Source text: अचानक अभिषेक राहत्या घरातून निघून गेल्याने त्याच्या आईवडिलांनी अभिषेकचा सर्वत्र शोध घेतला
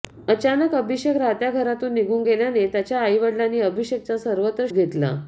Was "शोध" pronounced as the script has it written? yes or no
no